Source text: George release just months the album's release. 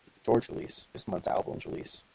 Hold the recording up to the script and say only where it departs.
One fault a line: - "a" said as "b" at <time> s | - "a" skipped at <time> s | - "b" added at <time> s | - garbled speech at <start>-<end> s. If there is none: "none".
none